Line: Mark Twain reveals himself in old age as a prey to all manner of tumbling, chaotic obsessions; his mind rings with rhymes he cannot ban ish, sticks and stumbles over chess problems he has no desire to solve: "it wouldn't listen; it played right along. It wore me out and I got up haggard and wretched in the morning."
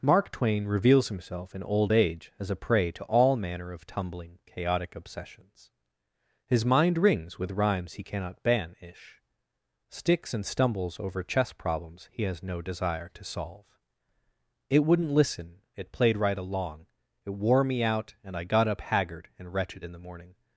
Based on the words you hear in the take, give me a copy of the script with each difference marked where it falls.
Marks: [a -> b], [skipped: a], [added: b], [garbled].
Mark Twain reveals himself in old age as a prey to all manner of tumbling, chaotic obsessions; his mind rings with rhymes he cannot ban ish, sticks and stumbles over chess problems he has no desire to solve: "it wouldn't listen; it played right along. It wore me out and I got up haggard and wretched in the morning."